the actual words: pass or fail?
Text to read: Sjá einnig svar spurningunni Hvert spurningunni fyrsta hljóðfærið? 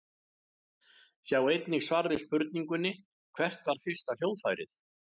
fail